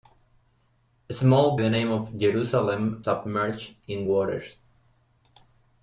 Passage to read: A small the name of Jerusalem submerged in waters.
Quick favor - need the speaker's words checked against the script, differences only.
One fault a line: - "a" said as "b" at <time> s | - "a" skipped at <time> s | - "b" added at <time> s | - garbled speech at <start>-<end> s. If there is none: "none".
none